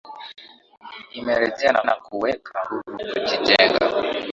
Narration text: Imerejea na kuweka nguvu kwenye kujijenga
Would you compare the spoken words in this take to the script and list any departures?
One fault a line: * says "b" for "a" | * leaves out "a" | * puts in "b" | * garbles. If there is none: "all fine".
* puts in "na"
* leaves out "kwenye"